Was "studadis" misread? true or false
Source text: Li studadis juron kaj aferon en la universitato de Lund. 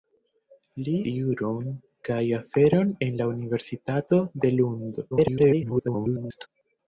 true